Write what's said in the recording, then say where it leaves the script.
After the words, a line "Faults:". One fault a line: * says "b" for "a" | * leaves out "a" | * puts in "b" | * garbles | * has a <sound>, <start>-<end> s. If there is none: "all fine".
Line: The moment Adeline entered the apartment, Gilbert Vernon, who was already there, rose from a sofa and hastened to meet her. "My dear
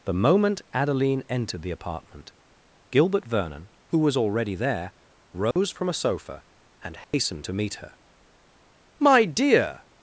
The moment Adeline entered the apartment, Gilbert Vernon, who was already there, rose from a sofa and hastened to meet her. "My dear
Faults:
* has a dropout, 5.5-5.6 s
* has a dropout, 7.0-7.1 s